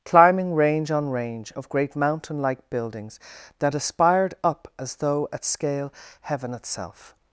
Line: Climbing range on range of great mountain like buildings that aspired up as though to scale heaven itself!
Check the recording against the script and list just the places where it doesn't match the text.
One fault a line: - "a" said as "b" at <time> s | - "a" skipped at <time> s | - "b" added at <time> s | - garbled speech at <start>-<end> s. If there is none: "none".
- "to" said as "at" at 5.3 s